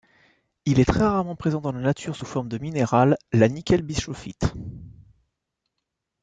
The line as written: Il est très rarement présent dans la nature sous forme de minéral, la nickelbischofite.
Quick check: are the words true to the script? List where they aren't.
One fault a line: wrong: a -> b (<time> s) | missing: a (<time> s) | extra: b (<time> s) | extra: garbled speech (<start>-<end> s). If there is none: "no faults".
no faults